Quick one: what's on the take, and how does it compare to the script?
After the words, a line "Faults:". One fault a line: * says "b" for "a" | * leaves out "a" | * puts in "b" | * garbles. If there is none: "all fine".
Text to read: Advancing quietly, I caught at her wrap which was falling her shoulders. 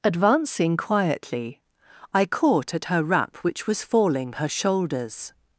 Advancing quietly, I caught at her wrap which was falling her shoulders.
Faults:
all fine